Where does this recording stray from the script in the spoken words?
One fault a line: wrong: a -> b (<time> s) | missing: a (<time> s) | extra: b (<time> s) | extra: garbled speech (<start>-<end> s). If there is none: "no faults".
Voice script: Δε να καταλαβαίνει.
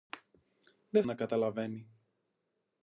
no faults